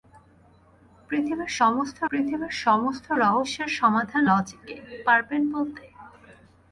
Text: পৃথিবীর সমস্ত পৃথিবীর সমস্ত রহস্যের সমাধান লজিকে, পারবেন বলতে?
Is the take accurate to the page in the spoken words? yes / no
yes